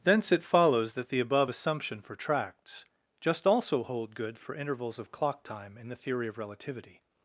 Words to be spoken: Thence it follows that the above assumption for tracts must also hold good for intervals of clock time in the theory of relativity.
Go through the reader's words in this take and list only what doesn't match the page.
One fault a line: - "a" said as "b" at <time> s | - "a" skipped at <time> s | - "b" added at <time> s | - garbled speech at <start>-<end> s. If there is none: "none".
- "must" said as "just" at 3.2 s